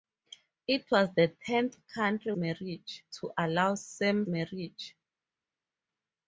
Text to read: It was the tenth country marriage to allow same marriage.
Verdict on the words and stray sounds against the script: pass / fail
pass